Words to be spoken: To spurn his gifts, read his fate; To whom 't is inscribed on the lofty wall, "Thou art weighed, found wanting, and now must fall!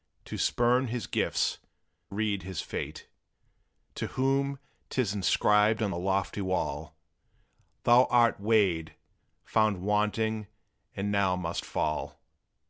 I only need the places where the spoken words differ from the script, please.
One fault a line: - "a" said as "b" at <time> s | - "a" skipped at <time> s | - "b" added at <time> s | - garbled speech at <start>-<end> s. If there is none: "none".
none